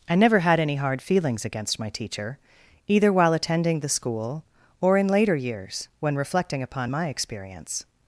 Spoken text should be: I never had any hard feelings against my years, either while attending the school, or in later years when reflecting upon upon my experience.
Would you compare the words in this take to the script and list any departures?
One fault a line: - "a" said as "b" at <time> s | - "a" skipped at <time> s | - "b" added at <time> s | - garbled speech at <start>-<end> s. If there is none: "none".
- "years" said as "teacher" at 1.9 s
- "upon" skipped at 6.9 s